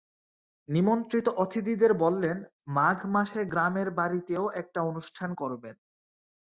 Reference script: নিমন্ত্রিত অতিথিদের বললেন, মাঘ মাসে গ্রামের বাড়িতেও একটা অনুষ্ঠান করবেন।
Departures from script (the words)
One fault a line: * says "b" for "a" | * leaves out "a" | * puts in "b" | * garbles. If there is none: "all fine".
all fine